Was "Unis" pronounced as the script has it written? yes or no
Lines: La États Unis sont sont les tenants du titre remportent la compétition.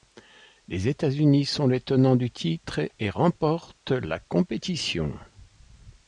yes